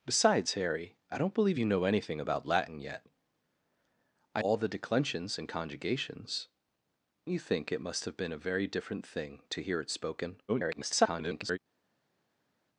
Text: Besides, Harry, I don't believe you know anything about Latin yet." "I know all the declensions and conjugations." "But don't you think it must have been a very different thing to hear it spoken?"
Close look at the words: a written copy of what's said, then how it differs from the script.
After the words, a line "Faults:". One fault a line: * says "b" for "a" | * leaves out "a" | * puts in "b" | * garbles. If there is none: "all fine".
Besides, Harry, I don't believe you know anything about Latin yet." "I all the declensions and conjugations." "You think it must have been a very different thing to hear it spoken?" [garbled]
Faults:
* leaves out "know"
* leaves out "But don't"
* garbles